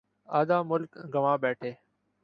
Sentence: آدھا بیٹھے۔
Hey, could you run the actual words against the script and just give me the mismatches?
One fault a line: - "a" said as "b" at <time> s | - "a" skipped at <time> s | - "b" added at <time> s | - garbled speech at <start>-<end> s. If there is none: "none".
- "ملک گنوا" added at 0.7 s